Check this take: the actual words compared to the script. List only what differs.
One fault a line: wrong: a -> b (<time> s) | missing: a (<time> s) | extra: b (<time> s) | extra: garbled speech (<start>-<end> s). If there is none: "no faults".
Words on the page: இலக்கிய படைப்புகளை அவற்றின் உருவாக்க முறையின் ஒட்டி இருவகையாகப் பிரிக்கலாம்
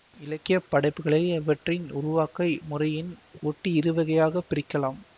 no faults